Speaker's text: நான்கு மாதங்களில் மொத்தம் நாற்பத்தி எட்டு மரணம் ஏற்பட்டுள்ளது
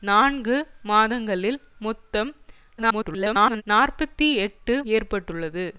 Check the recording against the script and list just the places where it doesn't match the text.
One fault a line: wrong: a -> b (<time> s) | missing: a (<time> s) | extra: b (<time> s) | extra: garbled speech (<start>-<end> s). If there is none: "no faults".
extra: garbled speech (2.8-3.6 s)
missing: மரணம் (4.7 s)